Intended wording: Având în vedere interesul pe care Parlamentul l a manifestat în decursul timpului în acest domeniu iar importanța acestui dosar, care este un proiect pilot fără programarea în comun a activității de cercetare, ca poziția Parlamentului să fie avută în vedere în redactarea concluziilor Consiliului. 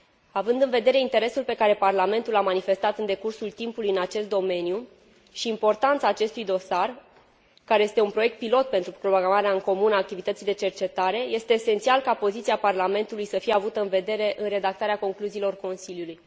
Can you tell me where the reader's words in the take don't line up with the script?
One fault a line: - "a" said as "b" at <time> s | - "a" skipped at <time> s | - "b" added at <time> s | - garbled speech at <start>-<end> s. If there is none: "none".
- "iar" said as "și" at 5.3 s
- "fără" said as "pentru" at 8.7 s
- "este esențial" added at 11.2 s